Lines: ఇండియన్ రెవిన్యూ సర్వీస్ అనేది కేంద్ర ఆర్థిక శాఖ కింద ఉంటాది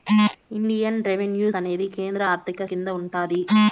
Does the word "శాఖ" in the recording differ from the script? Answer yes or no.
yes